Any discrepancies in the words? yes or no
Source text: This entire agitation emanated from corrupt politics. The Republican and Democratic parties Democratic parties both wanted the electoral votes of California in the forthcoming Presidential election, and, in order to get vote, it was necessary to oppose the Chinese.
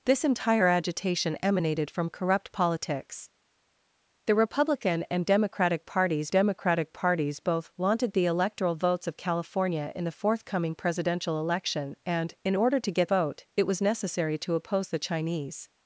no